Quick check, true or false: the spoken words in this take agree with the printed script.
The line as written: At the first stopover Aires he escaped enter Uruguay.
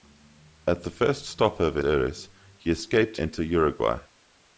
true